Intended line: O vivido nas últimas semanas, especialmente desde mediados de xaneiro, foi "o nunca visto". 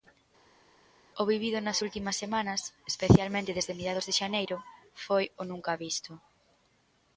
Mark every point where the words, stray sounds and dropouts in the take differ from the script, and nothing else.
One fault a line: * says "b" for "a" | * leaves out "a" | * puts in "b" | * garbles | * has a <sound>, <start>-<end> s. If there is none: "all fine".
all fine